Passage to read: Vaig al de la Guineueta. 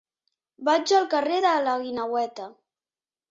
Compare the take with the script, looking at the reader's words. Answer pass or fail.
fail